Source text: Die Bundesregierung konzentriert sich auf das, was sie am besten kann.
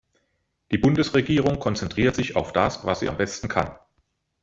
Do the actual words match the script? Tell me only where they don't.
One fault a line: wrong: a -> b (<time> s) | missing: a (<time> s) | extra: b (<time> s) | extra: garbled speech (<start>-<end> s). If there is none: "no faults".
no faults